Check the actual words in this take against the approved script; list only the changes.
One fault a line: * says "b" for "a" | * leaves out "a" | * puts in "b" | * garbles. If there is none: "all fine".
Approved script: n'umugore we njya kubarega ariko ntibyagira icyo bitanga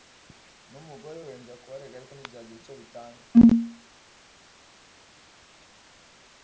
all fine